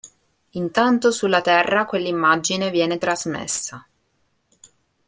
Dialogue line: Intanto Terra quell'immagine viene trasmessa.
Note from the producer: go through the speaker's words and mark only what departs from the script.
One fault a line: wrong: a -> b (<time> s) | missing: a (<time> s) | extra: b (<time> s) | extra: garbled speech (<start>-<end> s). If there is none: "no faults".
extra: sulla (1.1 s)